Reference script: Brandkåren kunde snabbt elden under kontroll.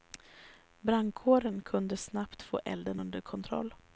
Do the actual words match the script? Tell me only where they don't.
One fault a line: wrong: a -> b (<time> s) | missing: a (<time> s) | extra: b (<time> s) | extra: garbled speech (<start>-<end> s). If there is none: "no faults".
extra: få (2.4 s)